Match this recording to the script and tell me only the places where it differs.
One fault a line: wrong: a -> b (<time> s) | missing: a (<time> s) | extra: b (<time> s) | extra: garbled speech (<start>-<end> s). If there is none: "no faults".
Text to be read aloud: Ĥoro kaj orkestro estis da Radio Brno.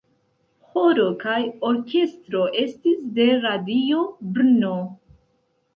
wrong: da -> de (3.2 s)